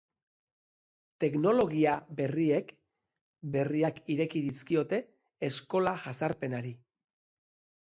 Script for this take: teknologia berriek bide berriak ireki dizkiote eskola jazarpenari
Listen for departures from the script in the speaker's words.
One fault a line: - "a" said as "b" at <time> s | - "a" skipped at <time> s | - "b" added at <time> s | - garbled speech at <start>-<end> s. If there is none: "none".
- "bide" skipped at 2.7 s